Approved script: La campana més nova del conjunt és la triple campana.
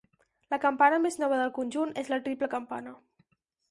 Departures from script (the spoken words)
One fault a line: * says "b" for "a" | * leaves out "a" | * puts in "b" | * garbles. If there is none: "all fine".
all fine